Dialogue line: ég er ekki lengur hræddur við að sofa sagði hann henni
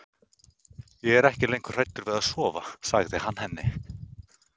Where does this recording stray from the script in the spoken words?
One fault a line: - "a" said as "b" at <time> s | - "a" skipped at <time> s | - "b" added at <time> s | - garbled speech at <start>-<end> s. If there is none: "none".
none